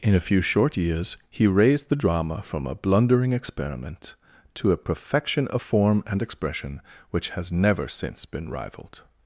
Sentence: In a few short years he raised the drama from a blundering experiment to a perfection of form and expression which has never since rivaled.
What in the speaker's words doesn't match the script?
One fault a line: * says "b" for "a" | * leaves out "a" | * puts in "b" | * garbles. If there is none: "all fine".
* puts in "been"